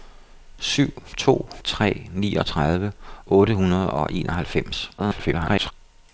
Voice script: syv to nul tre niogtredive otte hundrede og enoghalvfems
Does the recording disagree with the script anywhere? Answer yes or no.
yes